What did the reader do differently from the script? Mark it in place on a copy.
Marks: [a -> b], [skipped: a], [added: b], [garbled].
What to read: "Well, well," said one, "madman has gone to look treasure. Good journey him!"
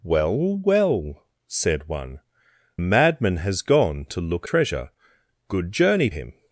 "Well, well," said one, "madman has gone to look treasure. Good journey him!"